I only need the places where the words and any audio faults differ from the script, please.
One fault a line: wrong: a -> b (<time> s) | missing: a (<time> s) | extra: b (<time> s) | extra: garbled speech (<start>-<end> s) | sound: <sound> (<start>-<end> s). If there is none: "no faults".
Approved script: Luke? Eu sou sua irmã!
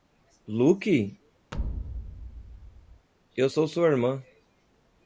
sound: thud (1.5-3.1 s)